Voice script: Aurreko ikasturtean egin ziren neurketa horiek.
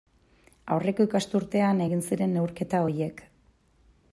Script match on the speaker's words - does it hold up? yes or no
yes